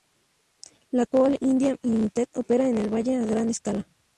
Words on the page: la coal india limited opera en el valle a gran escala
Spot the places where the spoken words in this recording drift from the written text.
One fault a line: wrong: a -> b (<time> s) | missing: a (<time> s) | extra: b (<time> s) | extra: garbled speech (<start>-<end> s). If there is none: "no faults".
no faults